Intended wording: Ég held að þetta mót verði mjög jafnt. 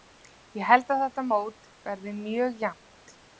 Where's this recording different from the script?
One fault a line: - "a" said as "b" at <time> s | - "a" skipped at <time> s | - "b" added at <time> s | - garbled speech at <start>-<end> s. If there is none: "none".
none